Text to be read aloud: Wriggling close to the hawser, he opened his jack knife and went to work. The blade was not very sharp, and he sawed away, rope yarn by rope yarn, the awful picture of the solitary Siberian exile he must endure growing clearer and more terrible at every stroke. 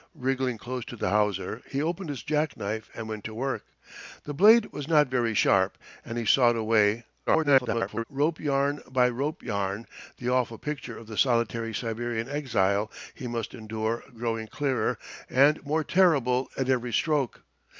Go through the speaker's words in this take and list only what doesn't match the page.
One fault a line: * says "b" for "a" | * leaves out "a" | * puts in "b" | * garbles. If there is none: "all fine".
* garbles